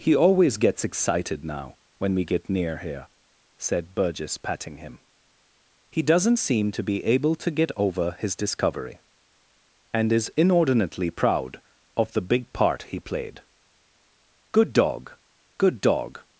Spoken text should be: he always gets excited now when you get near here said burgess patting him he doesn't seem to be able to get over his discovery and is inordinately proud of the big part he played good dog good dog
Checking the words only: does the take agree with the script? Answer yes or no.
no